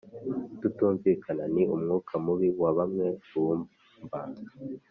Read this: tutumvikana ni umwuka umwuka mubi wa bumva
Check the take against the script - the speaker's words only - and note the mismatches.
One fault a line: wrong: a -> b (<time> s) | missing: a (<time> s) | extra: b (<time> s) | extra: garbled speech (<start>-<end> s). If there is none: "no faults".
missing: umwuka (2.1 s)
extra: bamwe (2.8 s)